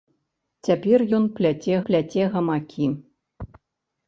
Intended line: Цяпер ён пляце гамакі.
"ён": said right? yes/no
yes